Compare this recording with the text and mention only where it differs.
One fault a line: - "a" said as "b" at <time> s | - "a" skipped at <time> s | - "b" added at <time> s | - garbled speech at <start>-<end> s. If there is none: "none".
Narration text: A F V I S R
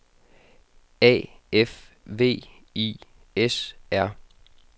none